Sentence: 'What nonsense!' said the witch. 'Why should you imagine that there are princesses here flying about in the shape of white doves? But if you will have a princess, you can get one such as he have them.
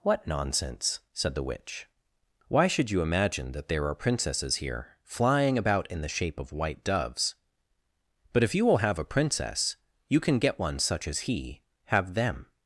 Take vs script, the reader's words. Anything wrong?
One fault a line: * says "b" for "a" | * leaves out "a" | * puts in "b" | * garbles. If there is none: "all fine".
all fine